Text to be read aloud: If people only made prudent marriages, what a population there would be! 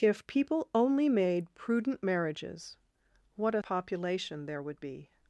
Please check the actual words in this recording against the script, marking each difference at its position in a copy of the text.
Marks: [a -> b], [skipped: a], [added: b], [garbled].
If people only made prudent marriages, what a population there would be!